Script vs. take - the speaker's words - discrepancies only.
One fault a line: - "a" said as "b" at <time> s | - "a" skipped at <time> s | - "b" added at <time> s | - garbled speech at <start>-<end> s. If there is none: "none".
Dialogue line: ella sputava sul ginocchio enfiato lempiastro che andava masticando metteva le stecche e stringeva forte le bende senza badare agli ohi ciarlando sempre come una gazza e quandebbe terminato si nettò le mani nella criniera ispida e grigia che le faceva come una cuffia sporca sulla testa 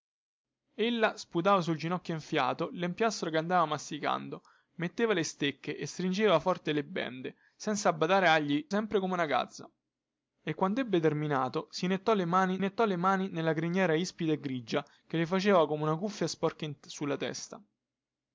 - "ohi ciarlando" skipped at 8.7 s
- "nettò le mani" added at 12.6 s